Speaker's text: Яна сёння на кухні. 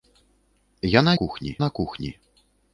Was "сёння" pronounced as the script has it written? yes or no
no